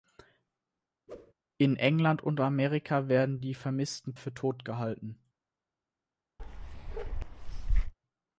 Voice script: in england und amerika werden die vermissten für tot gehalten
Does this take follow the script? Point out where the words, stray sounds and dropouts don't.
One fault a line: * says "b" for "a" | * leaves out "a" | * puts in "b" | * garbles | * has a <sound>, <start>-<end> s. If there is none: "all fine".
* has a whoosh, 1.1-1.3 s
* has a bark, 6.4-7.9 s